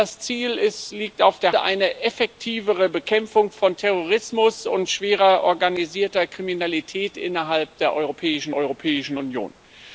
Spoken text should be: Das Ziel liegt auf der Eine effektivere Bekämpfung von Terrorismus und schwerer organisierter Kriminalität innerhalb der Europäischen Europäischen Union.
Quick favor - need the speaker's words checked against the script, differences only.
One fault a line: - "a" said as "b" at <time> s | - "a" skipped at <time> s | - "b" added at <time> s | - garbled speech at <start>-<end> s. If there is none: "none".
none